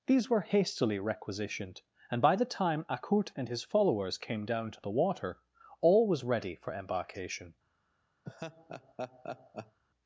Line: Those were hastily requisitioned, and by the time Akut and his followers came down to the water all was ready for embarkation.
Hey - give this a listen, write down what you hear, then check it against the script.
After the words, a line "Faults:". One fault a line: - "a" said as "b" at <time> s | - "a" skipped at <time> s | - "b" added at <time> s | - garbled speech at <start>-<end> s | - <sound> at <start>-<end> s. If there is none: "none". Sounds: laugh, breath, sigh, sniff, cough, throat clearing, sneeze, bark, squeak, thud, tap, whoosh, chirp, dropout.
These were hastily requisitioned, and by the time Akut and his followers came down to the water all was ready for embarkation.
Faults:
- "Those" said as "These" at 0.1 s
- laugh at 8.2-9.8 s